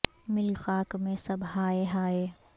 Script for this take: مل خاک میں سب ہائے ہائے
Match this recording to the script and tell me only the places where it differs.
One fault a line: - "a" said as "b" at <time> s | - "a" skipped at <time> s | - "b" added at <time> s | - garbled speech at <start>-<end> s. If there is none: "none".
none